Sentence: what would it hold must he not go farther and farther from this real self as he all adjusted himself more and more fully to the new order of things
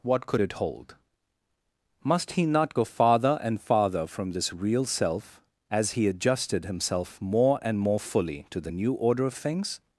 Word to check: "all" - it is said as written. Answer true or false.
false